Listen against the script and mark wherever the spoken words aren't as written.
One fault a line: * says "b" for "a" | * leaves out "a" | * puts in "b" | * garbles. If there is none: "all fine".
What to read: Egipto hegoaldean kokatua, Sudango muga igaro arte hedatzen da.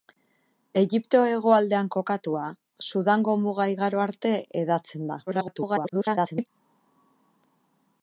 * garbles